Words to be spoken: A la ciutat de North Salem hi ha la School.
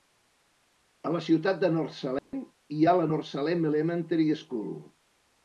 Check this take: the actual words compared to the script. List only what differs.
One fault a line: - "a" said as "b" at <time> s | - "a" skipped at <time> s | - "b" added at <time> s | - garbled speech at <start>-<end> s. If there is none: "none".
- "North Salem Elementary" added at 3.1 s